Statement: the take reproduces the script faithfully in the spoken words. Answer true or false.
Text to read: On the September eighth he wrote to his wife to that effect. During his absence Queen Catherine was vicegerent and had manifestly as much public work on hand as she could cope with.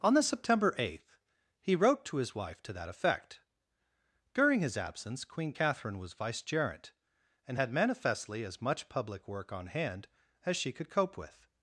true